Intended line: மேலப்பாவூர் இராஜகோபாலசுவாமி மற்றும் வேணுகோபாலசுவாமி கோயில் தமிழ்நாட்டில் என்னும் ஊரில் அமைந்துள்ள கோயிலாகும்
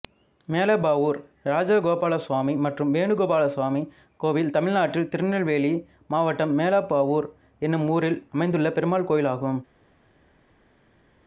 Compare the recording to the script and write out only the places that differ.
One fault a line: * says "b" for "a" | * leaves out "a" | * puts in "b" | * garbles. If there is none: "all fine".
* puts in "திருநெல்வேலி மாவட்டம் மேலப்பாவூர்"
* puts in "பெருமாள்"